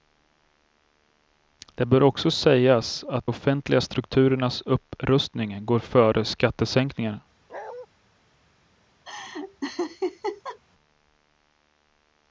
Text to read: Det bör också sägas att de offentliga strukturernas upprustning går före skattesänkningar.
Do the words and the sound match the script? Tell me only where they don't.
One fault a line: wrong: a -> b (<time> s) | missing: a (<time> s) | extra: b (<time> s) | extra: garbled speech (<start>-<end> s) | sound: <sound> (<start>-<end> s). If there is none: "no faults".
missing: de (3.3 s)
sound: bark (7.5-7.9 s)
sound: laugh (9.1-10.6 s)